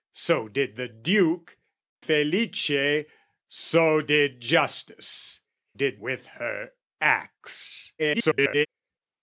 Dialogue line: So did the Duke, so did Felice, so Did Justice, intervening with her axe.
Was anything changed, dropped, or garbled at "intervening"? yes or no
yes